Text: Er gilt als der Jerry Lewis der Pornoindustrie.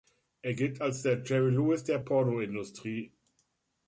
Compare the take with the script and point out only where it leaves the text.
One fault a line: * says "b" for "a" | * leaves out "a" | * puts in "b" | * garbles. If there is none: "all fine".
all fine